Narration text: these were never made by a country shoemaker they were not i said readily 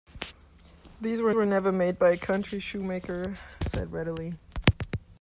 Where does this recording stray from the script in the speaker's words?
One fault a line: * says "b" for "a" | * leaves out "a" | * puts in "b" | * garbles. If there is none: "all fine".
* puts in "were"
* leaves out "they were not"